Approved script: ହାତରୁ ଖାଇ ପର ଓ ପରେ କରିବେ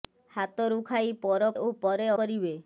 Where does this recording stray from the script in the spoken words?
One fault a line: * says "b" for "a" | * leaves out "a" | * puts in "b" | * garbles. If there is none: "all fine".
all fine